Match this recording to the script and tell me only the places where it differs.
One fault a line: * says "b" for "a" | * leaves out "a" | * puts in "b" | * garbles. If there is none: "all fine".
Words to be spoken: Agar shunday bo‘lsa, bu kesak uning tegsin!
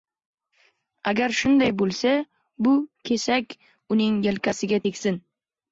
* puts in "yelkasiga"